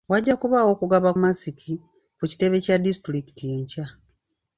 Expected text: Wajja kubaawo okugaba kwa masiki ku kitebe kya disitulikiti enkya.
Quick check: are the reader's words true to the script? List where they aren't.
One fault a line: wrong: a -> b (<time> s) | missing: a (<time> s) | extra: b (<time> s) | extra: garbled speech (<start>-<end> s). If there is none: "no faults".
missing: kwa (1.1 s)